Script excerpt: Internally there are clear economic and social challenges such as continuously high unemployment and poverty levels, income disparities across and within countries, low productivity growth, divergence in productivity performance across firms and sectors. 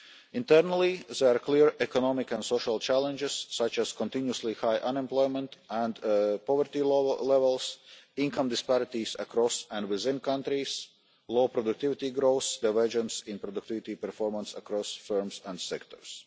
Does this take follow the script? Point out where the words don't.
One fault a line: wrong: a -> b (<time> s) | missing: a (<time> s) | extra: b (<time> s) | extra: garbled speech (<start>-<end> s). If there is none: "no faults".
no faults